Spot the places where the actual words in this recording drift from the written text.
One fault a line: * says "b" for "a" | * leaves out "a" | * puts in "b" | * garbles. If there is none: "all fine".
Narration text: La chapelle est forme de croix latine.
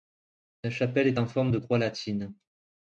* puts in "en"